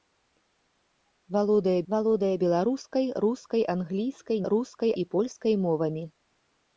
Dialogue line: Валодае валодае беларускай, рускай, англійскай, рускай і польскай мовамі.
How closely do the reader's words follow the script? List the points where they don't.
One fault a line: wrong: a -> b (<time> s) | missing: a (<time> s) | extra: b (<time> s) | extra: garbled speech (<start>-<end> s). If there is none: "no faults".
no faults